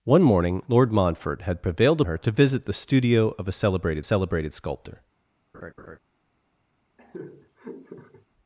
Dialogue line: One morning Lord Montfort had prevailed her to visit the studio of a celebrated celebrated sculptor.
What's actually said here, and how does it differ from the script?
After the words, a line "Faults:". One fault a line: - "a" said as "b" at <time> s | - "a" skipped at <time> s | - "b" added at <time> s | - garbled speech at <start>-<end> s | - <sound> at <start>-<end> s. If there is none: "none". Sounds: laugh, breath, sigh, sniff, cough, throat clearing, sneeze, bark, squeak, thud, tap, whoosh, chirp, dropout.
One morning Lord Montfort had prevailed her to visit the studio of a celebrated celebrated sculptor.
Faults:
- laugh at 5.5-6.0 s
- laugh at 7.0-8.3 s